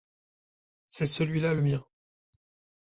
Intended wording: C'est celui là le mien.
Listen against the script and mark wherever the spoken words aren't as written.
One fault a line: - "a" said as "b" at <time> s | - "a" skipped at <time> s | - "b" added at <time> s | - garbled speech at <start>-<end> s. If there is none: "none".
none